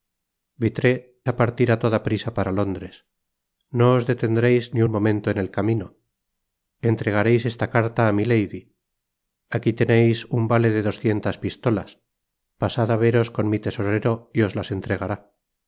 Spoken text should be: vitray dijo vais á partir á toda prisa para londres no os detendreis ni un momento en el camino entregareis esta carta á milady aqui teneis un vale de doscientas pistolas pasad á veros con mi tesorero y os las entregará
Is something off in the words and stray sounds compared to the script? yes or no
yes